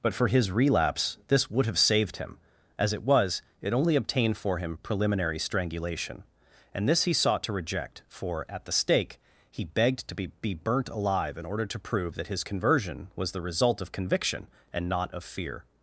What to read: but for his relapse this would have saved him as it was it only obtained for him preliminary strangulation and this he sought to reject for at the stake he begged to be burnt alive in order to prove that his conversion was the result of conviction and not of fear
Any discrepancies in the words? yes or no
yes